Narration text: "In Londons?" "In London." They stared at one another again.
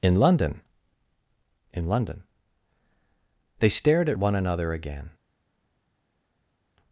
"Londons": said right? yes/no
no